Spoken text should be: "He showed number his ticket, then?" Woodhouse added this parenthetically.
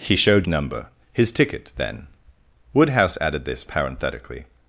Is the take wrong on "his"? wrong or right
right